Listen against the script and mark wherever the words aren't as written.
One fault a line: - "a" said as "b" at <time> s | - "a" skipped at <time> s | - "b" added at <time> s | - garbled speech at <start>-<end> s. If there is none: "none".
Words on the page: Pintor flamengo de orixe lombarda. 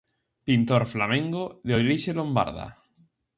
none